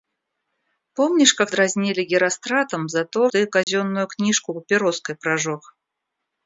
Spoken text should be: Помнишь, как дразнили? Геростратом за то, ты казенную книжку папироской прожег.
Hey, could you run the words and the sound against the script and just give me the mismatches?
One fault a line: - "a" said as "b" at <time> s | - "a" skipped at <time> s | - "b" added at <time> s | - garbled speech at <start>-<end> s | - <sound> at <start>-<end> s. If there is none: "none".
- dropout at 3.6-3.7 s